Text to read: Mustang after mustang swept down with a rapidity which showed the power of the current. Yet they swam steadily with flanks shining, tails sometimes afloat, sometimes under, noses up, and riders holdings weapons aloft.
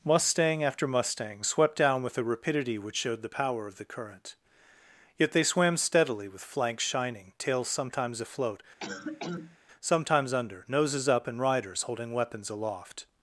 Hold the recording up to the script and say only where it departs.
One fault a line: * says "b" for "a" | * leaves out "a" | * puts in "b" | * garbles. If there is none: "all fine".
* says "holding" for "holdings"